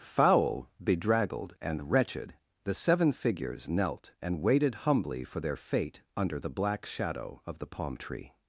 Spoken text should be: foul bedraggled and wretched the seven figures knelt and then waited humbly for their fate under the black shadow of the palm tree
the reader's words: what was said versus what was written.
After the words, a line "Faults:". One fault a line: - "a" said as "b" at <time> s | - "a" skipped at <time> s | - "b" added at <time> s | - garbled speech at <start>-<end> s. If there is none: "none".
foul bedraggled and wretched the seven figures knelt and waited humbly for their fate under the black shadow of the palm tree
Faults:
- "then" skipped at 4.4 s